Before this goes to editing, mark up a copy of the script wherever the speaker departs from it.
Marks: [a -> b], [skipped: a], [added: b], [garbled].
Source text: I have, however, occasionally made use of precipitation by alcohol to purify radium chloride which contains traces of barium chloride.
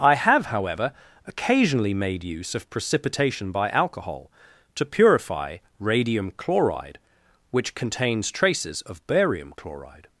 I have, however, occasionally made use of precipitation by alcohol to purify radium chloride which contains traces of barium chloride.